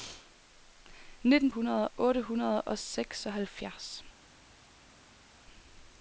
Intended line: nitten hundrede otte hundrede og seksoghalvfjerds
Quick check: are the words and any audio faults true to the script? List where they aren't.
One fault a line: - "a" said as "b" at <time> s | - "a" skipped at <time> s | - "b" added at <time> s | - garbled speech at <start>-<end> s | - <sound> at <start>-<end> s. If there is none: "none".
none